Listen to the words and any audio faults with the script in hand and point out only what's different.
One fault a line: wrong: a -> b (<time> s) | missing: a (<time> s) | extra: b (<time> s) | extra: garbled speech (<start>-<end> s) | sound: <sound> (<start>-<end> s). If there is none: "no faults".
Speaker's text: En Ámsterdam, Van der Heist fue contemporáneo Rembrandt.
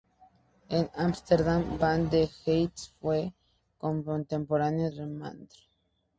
no faults